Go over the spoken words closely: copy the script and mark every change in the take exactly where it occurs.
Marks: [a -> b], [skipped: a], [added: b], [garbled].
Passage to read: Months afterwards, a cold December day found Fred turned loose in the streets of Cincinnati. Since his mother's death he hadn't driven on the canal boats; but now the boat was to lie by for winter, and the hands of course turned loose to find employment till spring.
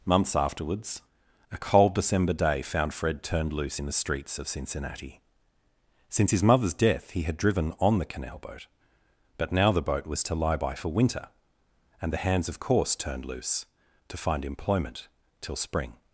Months afterwards, a cold December day found Fred turned loose in the streets of Cincinnati. Since his mother's death he [hadn't -> had] driven on the canal [boats; -> boat] but now the boat was to lie by for winter, and the hands of course turned loose to find employment till spring.